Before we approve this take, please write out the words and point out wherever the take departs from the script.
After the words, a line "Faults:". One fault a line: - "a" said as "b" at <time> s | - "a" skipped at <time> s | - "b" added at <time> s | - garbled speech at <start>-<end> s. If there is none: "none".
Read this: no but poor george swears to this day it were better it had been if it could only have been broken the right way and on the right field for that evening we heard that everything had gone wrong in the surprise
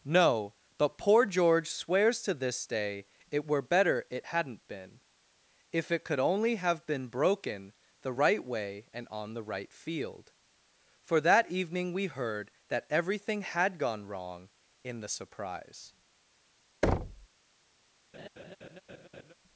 no but poor george swears to this day it were better it hadn't been if it could only have been broken the right way and on the right field for that evening we heard that everything had gone wrong in the surprise
Faults:
- "had" said as "hadn't" at 4.2 s